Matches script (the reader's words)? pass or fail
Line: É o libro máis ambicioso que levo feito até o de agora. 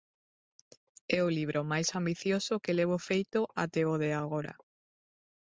pass